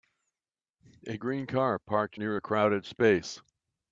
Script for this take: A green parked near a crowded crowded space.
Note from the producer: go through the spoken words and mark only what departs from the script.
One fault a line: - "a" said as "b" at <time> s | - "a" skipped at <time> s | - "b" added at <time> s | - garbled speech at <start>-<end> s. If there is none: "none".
- "car" added at 1.4 s
- "crowded" skipped at 2.8 s